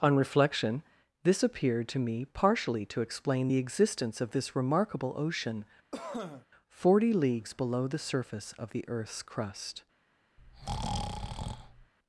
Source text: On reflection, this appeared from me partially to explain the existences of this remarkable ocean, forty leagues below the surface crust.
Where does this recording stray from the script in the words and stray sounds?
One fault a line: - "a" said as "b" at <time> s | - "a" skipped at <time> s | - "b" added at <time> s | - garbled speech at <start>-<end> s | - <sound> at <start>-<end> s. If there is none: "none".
- "from" said as "to" at 1.9 s
- "existences" said as "existence" at 3.6 s
- cough at 5.9-6.5 s
- "of the earth's" added at 8.5 s
- breath at 10.4-11.9 s